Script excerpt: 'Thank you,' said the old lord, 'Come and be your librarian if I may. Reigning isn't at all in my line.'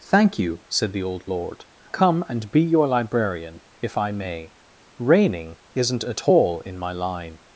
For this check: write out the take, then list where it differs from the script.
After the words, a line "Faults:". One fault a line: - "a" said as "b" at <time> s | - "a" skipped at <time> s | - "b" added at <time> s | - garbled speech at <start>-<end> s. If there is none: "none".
'Thank you,' said the old lord, 'Come and be your librarian if I may. Reigning isn't at all in my line.'
Faults:
none